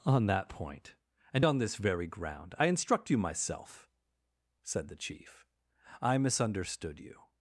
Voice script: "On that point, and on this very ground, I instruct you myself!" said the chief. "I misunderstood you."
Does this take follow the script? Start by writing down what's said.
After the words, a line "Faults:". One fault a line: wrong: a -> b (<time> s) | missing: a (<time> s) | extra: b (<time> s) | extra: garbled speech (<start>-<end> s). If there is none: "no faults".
"On that point, and on this very ground, I instruct you myself!" said the chief. "I misunderstood you."
Faults:
no faults